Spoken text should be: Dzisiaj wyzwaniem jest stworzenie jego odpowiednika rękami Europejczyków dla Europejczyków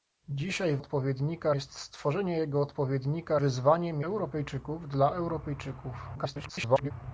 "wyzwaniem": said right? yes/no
no